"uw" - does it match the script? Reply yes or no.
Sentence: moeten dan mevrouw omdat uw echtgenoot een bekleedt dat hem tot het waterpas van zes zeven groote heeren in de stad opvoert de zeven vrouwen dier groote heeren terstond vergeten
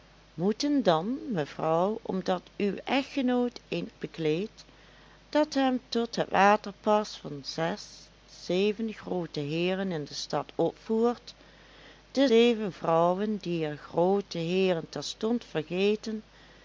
yes